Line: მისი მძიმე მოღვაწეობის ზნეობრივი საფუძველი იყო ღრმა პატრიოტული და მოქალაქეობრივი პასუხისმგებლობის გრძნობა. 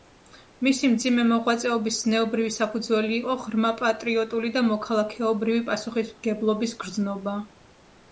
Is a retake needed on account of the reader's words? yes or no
no